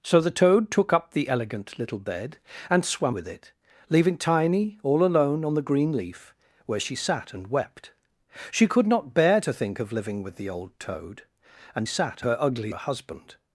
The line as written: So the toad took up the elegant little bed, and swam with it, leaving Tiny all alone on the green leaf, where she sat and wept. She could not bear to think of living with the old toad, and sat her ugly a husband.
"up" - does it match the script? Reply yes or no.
yes